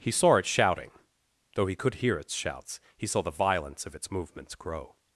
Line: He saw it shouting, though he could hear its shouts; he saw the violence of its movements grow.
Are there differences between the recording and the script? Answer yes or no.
no